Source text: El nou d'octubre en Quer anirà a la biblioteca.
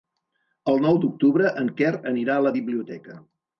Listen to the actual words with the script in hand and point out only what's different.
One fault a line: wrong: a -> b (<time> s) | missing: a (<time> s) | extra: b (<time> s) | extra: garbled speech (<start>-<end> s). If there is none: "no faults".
no faults